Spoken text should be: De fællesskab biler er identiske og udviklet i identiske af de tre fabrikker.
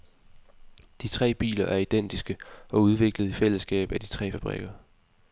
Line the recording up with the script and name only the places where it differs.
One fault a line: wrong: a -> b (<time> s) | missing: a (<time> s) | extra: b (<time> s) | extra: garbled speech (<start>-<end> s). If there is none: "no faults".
wrong: fællesskab -> tre (1.1 s)
wrong: identiske -> fællesskab (3.3 s)